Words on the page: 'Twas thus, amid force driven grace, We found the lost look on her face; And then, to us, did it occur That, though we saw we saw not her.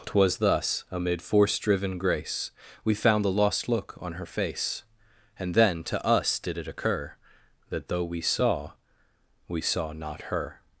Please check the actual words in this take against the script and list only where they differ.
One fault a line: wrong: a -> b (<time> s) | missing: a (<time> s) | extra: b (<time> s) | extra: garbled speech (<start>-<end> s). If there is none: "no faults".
no faults